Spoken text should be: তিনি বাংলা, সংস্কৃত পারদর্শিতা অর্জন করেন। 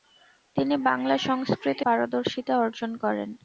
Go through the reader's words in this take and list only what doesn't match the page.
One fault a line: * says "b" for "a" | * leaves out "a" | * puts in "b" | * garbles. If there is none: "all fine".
all fine